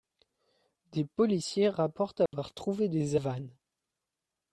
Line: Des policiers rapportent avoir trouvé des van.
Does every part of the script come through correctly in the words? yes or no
yes